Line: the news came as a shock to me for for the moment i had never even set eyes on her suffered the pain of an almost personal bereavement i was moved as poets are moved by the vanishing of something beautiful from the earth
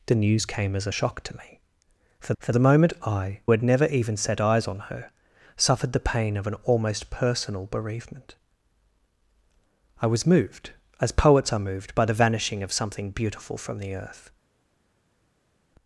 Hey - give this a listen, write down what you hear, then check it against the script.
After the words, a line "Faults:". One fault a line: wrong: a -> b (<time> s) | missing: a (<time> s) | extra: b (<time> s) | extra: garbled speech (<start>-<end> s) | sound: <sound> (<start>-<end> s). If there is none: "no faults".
the news came as a shock to me for for the moment i had never even set eyes on her suffered the pain of an almost personal bereavement i was moved as poets are moved by the vanishing of something beautiful from the earth
Faults:
no faults